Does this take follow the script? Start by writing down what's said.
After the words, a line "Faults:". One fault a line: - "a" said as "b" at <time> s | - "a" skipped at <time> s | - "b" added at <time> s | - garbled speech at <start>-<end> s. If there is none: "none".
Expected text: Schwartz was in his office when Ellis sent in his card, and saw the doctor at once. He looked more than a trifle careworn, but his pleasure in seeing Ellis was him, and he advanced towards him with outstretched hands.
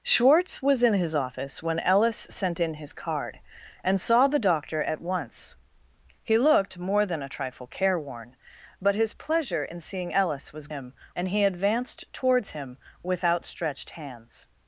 Schwartz was in his office when Ellis sent in his card, and saw the doctor at once. He looked more than a trifle careworn, but his pleasure in seeing Ellis was him, and he advanced towards him with outstretched hands.
Faults:
none